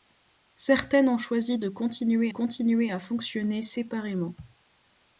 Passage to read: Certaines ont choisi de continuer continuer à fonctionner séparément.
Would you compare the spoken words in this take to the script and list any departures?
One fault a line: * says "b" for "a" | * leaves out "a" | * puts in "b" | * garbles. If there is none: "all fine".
all fine